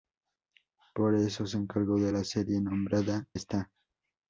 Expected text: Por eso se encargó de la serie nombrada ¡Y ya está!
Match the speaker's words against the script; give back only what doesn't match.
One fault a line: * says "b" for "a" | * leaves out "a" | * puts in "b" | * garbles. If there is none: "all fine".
* leaves out "Y ya"